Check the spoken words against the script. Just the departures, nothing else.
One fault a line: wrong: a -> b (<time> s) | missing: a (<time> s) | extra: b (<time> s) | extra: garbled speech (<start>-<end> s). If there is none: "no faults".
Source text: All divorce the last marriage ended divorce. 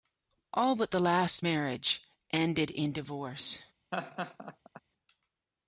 wrong: divorce -> but (0.8 s)
extra: in (2.7 s)